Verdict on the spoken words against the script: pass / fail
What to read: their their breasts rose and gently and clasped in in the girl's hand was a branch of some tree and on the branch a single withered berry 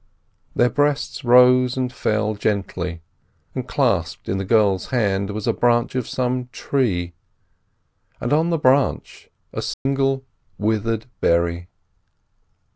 fail